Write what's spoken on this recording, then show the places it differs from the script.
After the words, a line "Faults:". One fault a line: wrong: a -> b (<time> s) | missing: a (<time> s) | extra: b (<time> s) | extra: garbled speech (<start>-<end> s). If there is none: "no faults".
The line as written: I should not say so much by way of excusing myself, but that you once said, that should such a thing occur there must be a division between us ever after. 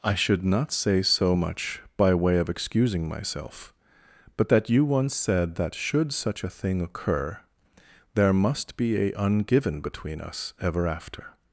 I should not say so much by way of excusing myself, but that you once said, that should such a thing occur there must be a ungiven between us ever after.
Faults:
wrong: division -> ungiven (9.1 s)